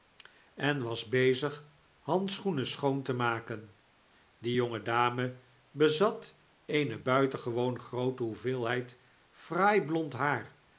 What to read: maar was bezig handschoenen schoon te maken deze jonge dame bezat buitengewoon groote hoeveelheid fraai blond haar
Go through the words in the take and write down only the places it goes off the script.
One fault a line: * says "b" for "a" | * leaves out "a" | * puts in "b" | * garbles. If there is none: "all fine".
* says "en" for "maar"
* says "die" for "deze"
* puts in "eene"